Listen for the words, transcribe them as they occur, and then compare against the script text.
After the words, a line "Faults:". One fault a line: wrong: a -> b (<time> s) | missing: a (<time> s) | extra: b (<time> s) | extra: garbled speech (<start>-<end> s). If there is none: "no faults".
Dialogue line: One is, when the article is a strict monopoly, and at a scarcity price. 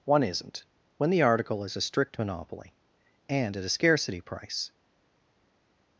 One isn't, when the article is a strict monopoly, and at a scarcity price.
Faults:
wrong: is -> isn't (0.2 s)